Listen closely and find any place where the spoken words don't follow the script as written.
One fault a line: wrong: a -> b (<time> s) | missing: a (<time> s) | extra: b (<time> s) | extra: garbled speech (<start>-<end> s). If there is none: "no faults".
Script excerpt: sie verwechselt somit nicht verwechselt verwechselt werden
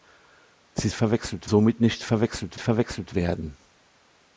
no faults